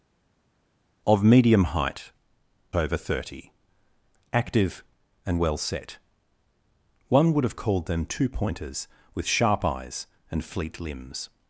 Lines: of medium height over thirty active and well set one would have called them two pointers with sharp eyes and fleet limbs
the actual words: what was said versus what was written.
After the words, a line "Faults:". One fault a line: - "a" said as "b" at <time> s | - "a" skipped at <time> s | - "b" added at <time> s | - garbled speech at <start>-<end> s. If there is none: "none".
of medium height over thirty active and well set one would have called them two pointers with sharp eyes and fleet limbs
Faults:
none